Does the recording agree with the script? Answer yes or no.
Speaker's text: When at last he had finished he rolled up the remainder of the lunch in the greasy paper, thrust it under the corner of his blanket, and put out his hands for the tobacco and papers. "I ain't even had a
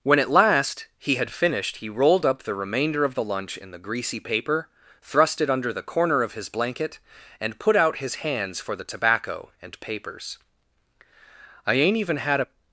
yes